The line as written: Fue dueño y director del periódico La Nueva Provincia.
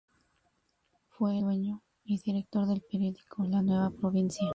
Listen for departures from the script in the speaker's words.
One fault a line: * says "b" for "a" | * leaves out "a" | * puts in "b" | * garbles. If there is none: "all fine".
all fine